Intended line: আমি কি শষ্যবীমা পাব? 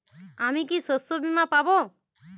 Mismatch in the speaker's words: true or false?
false